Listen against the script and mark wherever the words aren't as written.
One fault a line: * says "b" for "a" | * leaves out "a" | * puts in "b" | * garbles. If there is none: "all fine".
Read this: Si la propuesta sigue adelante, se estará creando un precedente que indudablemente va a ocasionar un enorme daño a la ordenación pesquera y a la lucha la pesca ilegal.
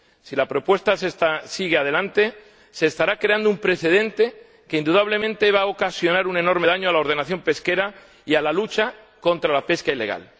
* puts in "contra"